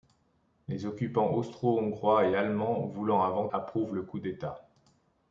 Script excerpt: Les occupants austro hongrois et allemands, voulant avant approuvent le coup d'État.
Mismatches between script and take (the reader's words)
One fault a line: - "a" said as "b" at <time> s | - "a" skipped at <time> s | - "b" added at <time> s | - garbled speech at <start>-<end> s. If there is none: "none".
none